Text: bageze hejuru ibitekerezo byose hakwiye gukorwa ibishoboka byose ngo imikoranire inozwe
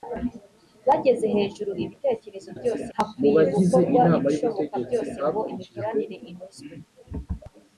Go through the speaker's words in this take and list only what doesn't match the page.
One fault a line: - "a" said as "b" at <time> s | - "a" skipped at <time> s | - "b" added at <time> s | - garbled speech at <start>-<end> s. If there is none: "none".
none